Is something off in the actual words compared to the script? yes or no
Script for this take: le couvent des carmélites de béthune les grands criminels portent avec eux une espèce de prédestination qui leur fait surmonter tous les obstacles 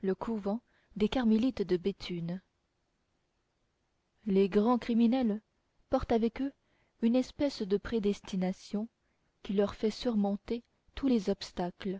no